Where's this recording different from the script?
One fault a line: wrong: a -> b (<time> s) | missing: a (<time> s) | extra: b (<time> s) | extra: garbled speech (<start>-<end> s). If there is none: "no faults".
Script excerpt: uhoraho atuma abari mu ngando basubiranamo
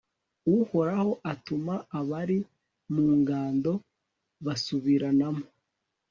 no faults